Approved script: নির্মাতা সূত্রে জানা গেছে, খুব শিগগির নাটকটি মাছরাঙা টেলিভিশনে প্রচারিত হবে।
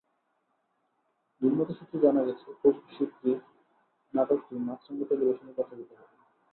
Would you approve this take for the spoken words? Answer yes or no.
yes